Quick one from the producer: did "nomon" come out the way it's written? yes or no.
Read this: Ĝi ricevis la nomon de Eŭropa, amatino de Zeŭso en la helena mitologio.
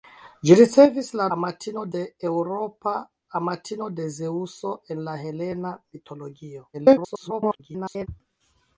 no